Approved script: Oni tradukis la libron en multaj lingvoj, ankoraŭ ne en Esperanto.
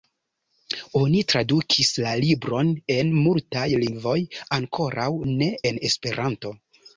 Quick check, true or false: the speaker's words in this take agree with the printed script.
true